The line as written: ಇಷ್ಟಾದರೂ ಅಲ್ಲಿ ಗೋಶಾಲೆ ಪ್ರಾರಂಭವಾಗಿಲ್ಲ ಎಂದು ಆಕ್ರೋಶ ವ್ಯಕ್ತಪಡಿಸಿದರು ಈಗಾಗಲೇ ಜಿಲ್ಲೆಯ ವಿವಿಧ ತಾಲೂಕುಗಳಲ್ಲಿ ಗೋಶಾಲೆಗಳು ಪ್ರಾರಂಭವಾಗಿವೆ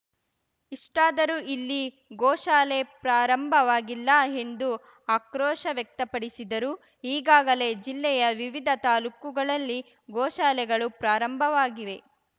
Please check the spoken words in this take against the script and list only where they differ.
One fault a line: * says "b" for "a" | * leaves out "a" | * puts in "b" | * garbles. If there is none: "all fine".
* says "ಇಲ್ಲಿ" for "ಅಲ್ಲಿ"